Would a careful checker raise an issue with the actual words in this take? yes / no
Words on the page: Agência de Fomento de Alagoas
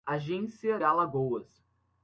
yes